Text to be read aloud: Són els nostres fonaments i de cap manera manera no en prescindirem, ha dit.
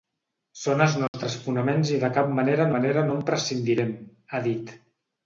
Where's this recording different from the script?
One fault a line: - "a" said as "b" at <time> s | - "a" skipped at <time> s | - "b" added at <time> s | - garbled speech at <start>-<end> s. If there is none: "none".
none